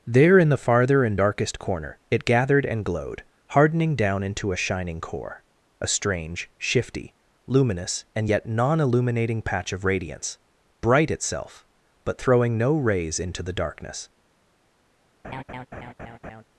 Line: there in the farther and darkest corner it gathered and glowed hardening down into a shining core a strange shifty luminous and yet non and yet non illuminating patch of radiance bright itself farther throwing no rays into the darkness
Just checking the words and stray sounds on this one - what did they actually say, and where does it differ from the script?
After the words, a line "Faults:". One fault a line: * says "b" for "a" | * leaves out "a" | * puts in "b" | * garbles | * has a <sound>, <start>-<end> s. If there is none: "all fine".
there in the farther and darkest corner it gathered and glowed hardening down into a shining core a strange shifty luminous and yet non illuminating patch of radiance bright itself but throwing no rays into the darkness
Faults:
* leaves out "and yet non"
* says "but" for "farther"
* has a laugh, 15.2-16.4 s